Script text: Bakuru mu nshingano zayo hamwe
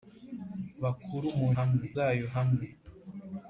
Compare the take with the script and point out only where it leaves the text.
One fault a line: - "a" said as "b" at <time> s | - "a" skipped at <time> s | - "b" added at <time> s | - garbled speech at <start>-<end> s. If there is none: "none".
- "nshingano" said as "hamwe" at 1.6 s